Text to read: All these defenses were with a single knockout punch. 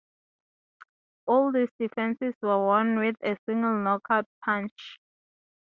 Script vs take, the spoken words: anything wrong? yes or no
yes